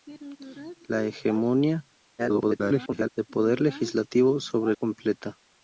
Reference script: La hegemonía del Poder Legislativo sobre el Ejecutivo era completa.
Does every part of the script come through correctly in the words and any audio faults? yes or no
no